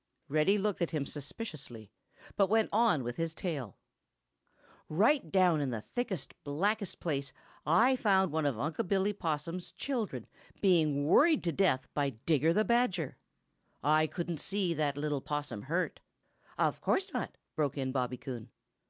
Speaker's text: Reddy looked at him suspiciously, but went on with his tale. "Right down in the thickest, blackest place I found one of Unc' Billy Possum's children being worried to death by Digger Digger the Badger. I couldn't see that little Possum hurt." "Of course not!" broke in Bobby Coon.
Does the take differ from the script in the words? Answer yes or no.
yes